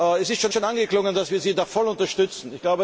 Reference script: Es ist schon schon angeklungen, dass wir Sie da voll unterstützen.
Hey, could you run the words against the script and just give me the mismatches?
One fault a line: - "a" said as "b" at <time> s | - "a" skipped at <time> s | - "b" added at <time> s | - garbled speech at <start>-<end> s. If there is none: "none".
none